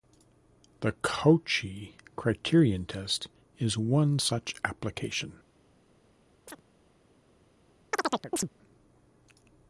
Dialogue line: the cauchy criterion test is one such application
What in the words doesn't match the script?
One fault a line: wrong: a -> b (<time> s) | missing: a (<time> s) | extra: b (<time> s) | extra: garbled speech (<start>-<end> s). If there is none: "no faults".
no faults